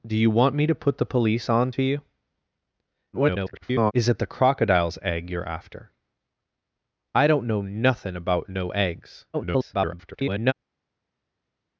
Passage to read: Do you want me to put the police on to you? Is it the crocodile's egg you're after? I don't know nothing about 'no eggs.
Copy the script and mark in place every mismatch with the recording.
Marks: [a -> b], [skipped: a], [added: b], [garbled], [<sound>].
Do you want me to put the police on to you? [garbled] Is it the crocodile's egg you're after? I don't know nothing about 'no eggs. [garbled]